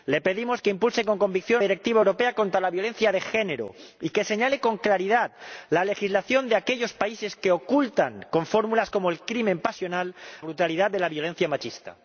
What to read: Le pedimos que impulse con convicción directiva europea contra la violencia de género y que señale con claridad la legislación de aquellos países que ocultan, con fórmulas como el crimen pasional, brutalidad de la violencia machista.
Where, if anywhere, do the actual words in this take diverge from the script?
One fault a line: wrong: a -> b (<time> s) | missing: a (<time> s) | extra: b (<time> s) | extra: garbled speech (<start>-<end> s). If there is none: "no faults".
no faults